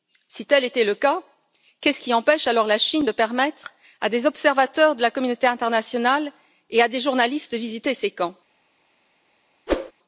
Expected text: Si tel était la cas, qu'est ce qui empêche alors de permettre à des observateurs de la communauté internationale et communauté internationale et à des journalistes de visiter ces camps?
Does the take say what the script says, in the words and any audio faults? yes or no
no